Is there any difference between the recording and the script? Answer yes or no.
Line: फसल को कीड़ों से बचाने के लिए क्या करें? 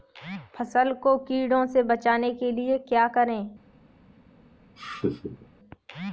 no